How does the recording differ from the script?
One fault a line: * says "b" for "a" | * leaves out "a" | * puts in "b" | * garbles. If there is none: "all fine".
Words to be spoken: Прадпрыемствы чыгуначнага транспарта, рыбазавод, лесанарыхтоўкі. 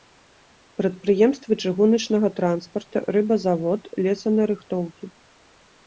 all fine